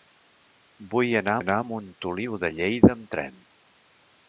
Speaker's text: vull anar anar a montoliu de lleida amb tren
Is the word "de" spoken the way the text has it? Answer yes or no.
yes